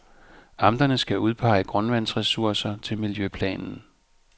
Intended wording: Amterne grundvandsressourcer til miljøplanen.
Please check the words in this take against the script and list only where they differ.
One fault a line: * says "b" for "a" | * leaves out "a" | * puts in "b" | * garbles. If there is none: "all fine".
* puts in "skal udpege"